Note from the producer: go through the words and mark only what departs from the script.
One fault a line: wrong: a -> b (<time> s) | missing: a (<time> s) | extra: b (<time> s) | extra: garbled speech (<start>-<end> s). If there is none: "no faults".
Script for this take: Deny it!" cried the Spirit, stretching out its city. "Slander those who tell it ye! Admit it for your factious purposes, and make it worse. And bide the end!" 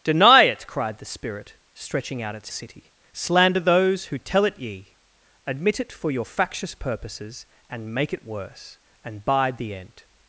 no faults